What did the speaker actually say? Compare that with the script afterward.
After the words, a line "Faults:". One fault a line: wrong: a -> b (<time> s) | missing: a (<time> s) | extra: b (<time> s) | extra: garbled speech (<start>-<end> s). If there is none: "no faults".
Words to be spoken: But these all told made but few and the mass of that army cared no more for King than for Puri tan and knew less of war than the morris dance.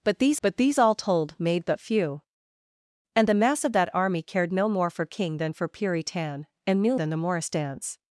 But these but these all told made but few and the mass of that army cared no more for King than for Puri tan and knew than the morris dance.
Faults:
extra: but these (0.4 s)
missing: less of war (7.0 s)